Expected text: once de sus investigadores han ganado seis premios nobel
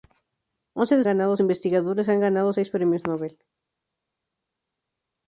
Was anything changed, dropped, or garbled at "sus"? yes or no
yes